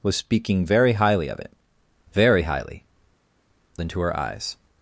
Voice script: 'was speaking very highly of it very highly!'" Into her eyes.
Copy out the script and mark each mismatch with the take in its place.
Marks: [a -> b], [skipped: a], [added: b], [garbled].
'was speaking very highly of it very highly!'" Into her eyes.